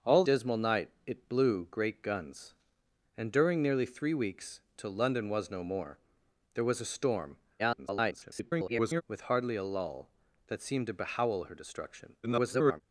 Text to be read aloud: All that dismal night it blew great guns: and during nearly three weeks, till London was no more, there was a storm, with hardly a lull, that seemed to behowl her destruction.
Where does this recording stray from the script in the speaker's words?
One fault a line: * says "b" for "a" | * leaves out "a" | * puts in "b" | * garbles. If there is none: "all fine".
* leaves out "that"
* garbles
* garbles